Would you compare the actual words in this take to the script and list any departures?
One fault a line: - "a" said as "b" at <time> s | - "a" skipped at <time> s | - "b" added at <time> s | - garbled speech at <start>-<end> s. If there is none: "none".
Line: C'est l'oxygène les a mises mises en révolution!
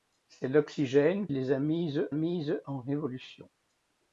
none